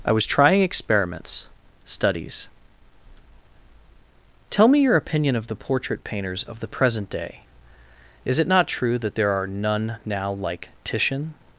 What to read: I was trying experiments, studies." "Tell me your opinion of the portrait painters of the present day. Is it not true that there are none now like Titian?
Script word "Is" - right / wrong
right